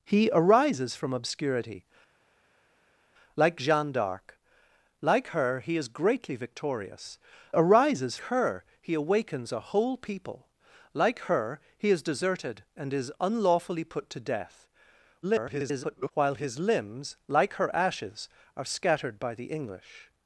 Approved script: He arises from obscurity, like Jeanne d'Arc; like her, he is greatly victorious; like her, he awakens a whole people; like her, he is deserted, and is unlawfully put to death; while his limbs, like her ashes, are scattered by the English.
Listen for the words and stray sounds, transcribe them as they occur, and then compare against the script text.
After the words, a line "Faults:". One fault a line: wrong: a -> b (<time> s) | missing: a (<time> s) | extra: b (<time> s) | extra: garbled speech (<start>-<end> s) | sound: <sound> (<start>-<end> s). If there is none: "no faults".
He arises from obscurity, like Jeanne d'Arc; like her, he is greatly victorious; arises her, he awakens a whole people; like her, he is deserted, and is unlawfully put to death; [garbled] while his limbs, like her ashes, are scattered by the English.
Faults:
wrong: like -> arises (7.5 s)
extra: garbled speech (15.2-16.1 s)